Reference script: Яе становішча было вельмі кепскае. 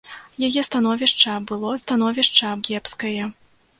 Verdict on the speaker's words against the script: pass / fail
fail